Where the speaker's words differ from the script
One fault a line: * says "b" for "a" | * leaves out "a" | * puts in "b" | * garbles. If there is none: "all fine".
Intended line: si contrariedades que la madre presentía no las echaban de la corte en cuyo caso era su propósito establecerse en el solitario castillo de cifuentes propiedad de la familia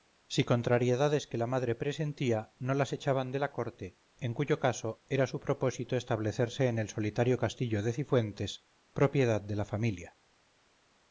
all fine